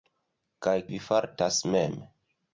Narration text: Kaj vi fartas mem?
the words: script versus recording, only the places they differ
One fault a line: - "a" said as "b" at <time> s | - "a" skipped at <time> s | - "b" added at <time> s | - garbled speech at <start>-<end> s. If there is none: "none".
none